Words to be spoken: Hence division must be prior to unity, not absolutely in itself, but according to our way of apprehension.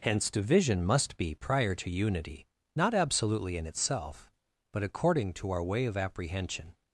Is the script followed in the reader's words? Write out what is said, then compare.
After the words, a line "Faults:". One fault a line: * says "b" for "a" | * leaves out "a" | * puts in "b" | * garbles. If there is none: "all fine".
Hence division must be prior to unity, not absolutely in itself, but according to our way of apprehension.
Faults:
all fine